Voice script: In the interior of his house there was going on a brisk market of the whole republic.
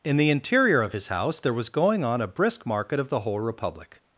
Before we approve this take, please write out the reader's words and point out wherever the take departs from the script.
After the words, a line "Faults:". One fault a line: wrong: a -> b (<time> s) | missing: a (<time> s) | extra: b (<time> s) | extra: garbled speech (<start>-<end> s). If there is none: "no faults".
In the interior of his house there was going on a brisk market of the whole republic.
Faults:
no faults